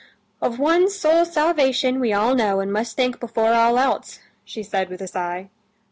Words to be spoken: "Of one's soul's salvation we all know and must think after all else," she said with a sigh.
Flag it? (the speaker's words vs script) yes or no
yes